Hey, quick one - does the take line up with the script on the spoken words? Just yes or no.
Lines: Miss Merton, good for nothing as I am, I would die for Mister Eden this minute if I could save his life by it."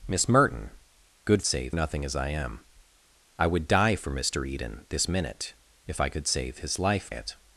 no